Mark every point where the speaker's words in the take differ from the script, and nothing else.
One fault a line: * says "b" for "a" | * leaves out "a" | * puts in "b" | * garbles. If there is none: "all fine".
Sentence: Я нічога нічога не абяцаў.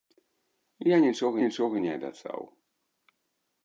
all fine